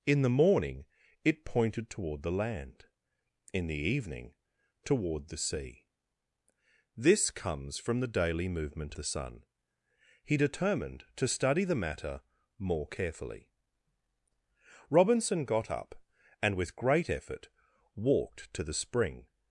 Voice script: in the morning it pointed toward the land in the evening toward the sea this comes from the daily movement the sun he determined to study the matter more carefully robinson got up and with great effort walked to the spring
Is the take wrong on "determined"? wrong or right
right